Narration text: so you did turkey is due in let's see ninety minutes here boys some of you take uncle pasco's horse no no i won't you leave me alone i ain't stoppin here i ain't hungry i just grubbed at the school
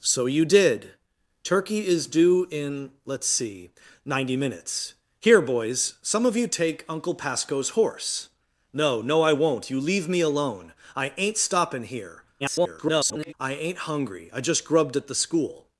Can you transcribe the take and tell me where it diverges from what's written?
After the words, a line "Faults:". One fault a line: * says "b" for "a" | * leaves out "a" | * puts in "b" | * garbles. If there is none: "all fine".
so you did turkey is due in let's see ninety minutes here boys some of you take uncle pasco's horse no no i won't you leave me alone i ain't stoppin here [garbled] i ain't hungry i just grubbed at the school
Faults:
* garbles